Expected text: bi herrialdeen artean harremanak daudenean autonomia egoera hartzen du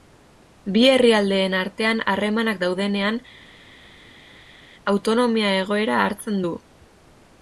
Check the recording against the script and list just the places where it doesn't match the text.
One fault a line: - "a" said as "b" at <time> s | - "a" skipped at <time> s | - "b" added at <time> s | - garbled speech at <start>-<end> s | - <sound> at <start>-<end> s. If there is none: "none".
none